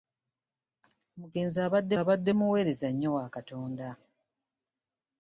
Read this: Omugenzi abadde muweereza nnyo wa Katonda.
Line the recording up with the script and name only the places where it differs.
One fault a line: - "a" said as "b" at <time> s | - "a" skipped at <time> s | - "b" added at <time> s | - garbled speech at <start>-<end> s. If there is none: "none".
- "abadde" added at 2.0 s